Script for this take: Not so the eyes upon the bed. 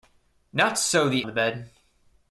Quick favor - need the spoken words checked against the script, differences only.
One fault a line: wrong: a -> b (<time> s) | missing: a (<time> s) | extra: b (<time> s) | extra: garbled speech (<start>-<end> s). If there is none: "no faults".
missing: eyes upon (1.3 s)